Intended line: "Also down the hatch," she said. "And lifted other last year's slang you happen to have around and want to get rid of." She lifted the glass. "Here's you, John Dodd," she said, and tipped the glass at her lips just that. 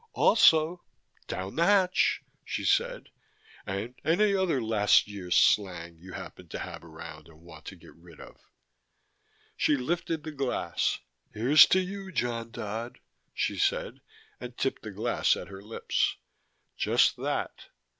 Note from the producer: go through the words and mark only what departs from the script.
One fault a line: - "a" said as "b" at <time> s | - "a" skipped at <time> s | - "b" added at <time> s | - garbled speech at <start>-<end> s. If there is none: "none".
- "lifted" said as "any" at 4.0 s
- "to" added at 11.7 s